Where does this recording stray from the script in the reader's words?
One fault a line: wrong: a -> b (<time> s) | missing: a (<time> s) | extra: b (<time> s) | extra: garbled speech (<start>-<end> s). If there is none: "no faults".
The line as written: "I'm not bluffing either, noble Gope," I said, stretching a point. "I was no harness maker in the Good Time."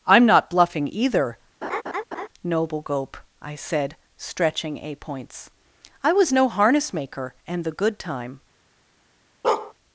wrong: point -> points (5.0 s)
wrong: in -> and (7.5 s)